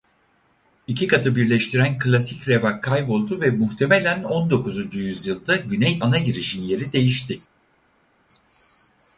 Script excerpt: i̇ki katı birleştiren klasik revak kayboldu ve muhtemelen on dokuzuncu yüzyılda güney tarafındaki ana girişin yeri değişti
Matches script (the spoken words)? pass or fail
fail